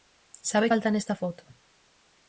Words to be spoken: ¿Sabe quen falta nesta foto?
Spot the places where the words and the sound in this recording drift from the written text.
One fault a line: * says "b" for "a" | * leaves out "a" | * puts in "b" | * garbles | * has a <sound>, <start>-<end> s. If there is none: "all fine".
* leaves out "quen"